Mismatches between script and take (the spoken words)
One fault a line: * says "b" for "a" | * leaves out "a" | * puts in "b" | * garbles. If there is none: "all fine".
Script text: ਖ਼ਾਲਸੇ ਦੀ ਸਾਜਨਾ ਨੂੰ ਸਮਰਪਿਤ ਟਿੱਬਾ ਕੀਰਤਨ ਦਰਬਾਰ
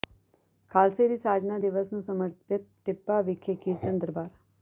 * puts in "ਦਿਵਸ"
* puts in "ਵਿਖੇ"